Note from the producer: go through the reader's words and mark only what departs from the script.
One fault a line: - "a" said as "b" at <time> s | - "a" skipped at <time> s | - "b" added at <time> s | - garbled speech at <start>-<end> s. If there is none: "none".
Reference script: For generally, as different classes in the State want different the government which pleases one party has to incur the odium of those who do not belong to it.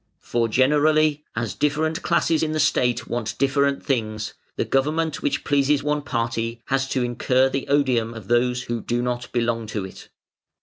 - "things" added at 3.8 s